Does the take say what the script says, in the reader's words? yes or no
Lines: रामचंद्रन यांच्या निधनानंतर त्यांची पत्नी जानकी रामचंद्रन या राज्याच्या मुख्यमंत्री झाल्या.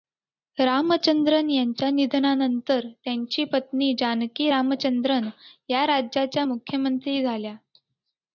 yes